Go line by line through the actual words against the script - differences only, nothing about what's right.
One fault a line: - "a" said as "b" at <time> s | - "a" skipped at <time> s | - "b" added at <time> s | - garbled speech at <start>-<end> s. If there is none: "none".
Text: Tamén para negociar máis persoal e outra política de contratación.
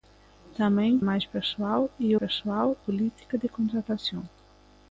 - "para negociar" skipped at 0.9 s
- "outra" said as "persoal" at 2.2 s